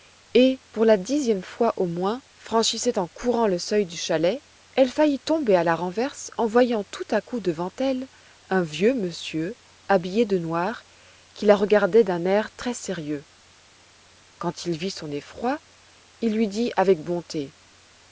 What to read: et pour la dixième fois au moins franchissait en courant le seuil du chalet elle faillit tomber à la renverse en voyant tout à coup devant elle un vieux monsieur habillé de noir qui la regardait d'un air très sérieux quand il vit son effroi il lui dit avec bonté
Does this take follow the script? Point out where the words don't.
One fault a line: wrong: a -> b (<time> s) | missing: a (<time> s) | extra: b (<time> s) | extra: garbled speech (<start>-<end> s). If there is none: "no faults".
no faults